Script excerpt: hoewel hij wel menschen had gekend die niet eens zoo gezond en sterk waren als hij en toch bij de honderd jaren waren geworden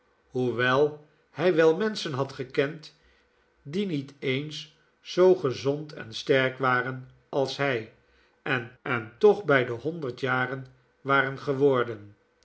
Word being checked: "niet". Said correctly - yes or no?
yes